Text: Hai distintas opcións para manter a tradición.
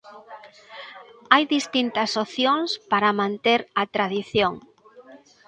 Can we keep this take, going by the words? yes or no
yes